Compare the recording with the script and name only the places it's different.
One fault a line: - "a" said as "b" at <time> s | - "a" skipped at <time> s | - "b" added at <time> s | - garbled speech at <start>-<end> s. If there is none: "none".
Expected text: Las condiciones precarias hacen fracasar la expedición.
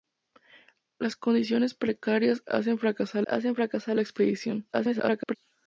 - "hacen fracasar" added at 3.3 s
- garbled speech at 4.7-5.4 s